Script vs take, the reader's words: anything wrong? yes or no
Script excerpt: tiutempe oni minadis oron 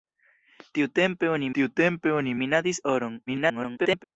yes